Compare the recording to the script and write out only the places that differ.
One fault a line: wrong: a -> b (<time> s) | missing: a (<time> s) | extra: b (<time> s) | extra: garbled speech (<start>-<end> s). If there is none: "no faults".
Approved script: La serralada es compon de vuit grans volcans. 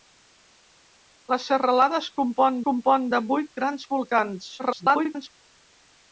extra: compon (2.7 s)
extra: garbled speech (4.6-5.3 s)